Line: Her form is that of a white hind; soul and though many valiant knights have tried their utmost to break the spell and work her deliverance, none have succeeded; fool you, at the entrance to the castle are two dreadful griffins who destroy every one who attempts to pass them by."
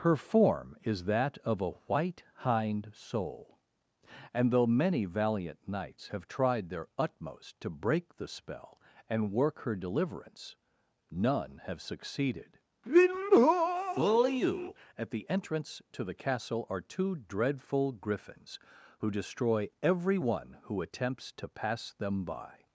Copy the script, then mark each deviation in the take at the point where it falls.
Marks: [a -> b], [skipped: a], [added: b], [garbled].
Her form is that of a white hind; soul and though many valiant knights have tried their utmost to break the spell and work her deliverance, none have succeeded; fool you, at the entrance to the castle are two dreadful griffins who destroy every one who attempts to pass them by."